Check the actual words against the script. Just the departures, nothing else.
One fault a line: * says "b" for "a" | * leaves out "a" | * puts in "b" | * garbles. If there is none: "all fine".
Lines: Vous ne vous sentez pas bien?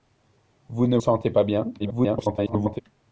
* leaves out "vous"
* garbles